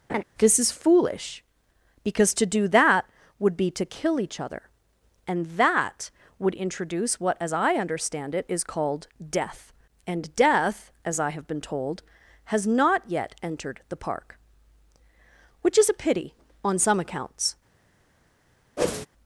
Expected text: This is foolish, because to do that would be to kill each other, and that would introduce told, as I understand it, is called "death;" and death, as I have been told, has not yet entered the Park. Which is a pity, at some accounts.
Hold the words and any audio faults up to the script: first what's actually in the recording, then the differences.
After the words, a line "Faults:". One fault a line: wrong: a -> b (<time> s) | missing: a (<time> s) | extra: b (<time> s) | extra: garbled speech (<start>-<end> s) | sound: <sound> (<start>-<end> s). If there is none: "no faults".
This is foolish, because to do that would be to kill each other, and that would introduce what, as I understand it, is called "death;" and death, as I have been told, has not yet entered the Park. Which is a pity, on some accounts.
Faults:
sound: laugh (0.1-0.2 s)
wrong: told -> what (7.2 s)
wrong: at -> on (16.7 s)
sound: whoosh (18.8-19.1 s)